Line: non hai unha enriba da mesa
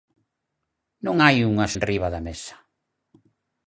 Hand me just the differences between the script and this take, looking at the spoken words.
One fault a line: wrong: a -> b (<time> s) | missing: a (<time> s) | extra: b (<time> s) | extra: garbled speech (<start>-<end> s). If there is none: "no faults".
no faults